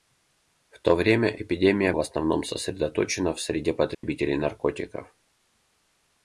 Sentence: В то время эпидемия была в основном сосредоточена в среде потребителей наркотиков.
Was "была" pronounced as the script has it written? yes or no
no